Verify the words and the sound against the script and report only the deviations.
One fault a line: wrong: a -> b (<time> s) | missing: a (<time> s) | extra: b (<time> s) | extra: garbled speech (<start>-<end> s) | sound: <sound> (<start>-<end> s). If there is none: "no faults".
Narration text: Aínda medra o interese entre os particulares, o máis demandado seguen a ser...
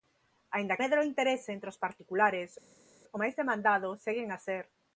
no faults